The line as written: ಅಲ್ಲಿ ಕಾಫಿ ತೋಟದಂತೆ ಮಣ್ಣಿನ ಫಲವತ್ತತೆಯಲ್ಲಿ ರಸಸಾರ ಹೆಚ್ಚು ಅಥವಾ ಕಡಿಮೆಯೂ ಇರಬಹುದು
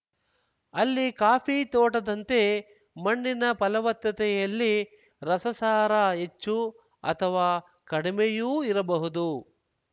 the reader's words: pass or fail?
pass